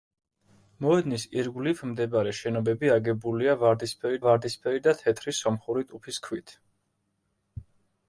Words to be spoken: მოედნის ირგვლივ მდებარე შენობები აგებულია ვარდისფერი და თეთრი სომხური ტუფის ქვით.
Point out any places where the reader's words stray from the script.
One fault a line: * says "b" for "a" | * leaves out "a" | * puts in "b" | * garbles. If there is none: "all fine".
* puts in "ვარდისფერი"